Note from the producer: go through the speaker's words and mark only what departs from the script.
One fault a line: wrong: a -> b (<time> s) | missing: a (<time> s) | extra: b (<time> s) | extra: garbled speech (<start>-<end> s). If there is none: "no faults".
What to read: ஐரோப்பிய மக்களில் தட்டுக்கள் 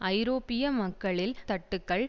no faults